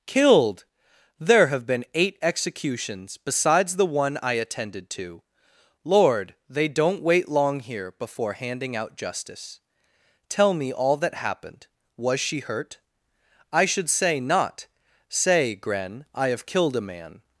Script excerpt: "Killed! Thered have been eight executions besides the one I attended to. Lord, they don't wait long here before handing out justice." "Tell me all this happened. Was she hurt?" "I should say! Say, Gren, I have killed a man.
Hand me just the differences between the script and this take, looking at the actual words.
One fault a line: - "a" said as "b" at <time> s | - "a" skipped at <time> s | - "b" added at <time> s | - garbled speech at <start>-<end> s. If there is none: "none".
- "Thered" said as "There" at 1.2 s
- "this" said as "that" at 11.0 s
- "not" added at 14.2 s